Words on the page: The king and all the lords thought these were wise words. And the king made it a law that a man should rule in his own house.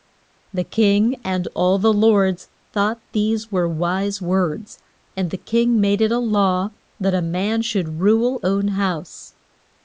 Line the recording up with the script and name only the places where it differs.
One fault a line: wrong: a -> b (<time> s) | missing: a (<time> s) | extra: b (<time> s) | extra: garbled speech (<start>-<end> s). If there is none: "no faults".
missing: in his (8.4 s)